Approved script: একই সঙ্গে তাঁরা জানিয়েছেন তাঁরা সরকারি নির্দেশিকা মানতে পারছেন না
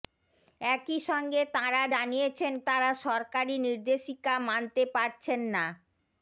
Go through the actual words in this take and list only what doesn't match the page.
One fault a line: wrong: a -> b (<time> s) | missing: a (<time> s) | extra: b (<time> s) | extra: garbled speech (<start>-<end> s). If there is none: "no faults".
no faults